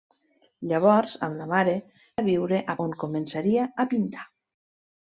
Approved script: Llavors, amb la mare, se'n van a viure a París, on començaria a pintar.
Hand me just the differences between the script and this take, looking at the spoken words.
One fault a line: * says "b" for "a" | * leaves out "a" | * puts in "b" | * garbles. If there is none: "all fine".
* leaves out "se'n van"
* leaves out "París"